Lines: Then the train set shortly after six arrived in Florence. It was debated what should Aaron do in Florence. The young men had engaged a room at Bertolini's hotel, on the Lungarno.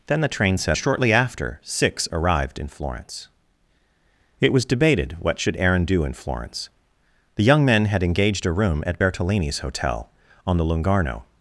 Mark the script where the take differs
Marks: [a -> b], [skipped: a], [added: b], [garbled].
Then the train set shortly after six arrived in Florence. It was debated what should Aaron do in Florence. The young men had engaged a room at Bertolini's hotel, on the Lungarno.